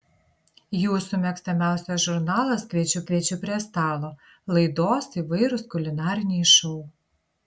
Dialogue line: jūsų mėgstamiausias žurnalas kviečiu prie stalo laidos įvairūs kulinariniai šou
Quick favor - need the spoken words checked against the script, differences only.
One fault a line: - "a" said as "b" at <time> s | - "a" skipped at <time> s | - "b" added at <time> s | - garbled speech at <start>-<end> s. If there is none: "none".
- "kviečiu" added at 3.1 s